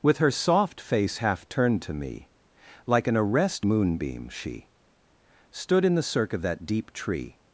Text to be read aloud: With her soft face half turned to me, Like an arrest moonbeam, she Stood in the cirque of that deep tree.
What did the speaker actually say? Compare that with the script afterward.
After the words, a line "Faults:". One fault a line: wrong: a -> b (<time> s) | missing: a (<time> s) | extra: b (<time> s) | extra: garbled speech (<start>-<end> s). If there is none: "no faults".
With her soft face half turned to me, Like an arrest moonbeam, she Stood in the cirque of that deep tree.
Faults:
no faults